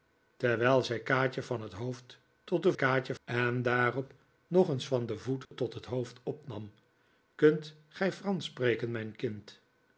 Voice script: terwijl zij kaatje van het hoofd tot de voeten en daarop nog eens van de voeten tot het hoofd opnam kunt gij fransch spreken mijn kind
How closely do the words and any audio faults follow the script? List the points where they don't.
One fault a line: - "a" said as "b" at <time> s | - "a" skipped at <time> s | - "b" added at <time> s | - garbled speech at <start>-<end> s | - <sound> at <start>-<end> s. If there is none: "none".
- "voeten" said as "kaatje" at 2.7 s
- dropout at 5.5-5.5 s